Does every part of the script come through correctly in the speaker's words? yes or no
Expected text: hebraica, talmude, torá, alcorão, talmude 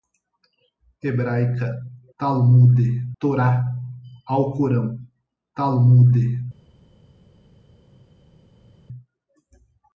yes